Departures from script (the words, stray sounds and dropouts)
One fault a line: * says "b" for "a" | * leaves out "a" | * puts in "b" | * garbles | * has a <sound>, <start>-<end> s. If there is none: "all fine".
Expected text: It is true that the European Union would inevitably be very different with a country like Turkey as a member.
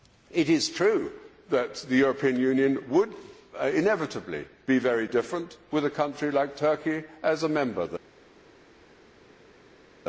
all fine